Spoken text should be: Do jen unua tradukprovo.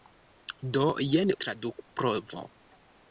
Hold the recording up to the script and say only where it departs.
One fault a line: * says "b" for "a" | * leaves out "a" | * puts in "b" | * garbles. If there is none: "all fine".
* leaves out "unua"